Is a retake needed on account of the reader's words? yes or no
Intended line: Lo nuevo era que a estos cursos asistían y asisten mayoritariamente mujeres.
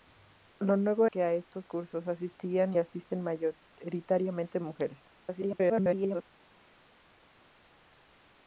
yes